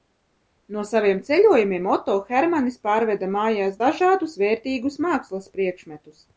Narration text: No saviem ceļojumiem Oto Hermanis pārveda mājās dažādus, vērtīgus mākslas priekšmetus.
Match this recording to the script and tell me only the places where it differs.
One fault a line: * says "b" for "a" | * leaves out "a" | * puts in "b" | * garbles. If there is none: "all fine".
all fine